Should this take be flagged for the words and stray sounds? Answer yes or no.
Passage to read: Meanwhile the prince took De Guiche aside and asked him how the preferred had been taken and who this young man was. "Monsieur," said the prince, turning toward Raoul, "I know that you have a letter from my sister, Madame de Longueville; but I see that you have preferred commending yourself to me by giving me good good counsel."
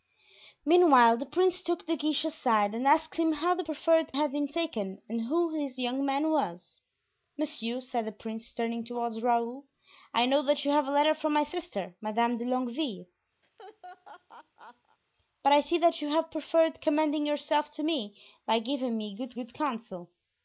yes